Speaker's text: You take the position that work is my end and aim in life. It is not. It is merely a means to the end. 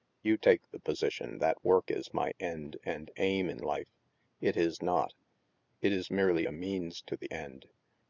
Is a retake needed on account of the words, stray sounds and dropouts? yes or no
no